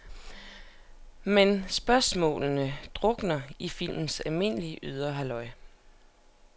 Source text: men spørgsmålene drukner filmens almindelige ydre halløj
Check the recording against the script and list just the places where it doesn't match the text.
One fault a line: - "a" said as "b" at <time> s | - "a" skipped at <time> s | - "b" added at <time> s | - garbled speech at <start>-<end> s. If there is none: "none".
- "i" added at 3.6 s